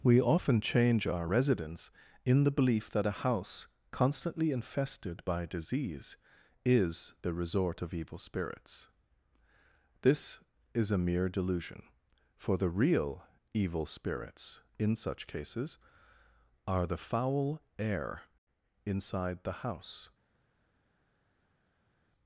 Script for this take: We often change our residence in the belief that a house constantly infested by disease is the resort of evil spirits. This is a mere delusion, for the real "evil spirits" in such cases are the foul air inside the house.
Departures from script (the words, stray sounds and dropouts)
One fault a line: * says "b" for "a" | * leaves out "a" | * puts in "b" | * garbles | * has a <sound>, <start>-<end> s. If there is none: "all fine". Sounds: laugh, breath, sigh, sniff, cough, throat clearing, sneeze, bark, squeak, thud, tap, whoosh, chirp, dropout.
all fine